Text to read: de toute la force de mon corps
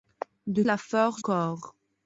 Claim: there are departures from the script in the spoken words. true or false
true